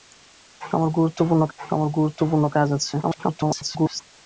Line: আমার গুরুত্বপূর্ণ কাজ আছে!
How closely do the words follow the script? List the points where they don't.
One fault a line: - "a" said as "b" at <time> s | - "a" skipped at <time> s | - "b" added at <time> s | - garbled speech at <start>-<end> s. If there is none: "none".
- "আমার গুরুত্বপূর্ণ" added at 1.6 s
- garbled speech at 3.0-4.0 s